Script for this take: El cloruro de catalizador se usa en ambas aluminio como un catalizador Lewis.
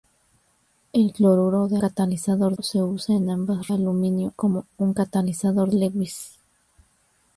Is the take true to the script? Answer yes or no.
yes